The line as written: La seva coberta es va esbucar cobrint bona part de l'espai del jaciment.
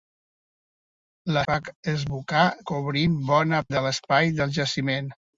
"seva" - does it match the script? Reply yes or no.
no